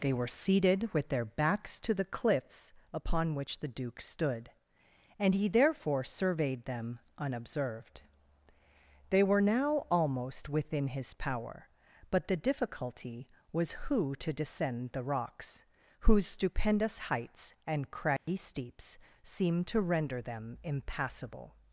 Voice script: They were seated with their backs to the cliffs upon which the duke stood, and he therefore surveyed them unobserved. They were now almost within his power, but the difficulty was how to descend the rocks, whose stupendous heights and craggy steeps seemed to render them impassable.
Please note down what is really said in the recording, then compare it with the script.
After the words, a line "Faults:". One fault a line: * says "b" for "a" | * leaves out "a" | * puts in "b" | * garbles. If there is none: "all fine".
They were seated with their backs to the cliffs upon which the duke stood, and he therefore surveyed them unobserved. They were now almost within his power, but the difficulty was who to descend the rocks, whose stupendous heights and craggy steeps seemed to render them impassable.
Faults:
* says "who" for "how"